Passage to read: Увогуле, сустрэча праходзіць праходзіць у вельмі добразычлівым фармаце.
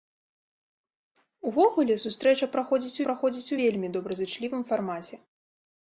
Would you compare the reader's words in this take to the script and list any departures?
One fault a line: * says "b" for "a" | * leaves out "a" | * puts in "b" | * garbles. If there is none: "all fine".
all fine